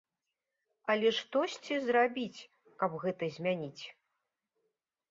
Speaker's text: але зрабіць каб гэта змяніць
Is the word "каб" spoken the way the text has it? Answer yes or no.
yes